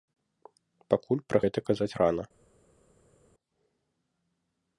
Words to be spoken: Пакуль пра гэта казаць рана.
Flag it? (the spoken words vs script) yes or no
no